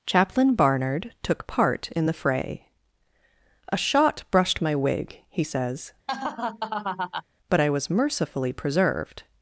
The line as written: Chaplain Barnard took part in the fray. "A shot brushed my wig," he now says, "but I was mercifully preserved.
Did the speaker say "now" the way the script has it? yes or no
no